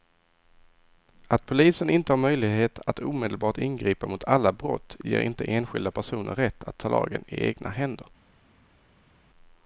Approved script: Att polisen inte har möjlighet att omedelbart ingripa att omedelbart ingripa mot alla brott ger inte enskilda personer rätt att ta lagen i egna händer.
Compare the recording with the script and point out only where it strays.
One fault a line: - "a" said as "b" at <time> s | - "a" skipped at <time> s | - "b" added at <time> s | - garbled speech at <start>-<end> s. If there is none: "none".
- "att omedelbart ingripa" skipped at 4.1 s